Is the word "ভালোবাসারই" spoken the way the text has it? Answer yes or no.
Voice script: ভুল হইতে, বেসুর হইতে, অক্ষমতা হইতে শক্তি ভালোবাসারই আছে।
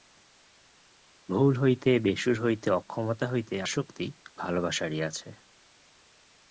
yes